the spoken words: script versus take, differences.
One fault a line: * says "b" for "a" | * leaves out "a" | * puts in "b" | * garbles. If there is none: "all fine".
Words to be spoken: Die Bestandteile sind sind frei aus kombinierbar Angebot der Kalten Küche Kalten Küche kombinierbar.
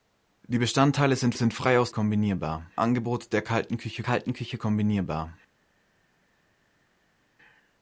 all fine